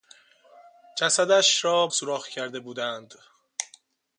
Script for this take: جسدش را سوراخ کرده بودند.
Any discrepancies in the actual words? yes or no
no